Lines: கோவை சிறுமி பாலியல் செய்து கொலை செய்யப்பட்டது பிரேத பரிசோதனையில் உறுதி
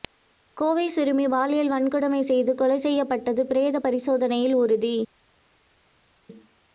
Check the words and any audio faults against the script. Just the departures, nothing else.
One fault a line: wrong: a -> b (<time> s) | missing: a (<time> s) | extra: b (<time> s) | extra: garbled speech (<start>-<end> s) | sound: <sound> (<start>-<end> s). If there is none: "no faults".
extra: வன்கொடுமை (1.7 s)